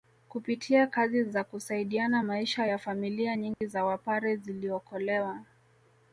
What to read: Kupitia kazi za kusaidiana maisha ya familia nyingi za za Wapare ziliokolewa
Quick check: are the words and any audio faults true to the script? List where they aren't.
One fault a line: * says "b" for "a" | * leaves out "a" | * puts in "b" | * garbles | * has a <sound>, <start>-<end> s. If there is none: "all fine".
* has a dropout, 3.5-3.6 s
* leaves out "za"